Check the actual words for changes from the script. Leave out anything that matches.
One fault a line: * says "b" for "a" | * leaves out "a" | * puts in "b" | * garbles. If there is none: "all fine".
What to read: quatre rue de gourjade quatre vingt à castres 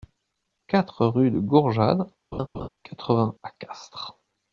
all fine